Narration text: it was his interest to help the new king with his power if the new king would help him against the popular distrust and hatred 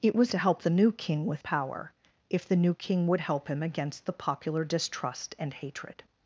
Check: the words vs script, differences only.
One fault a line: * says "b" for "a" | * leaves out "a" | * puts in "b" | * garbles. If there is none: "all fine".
* leaves out "his interest"
* leaves out "his"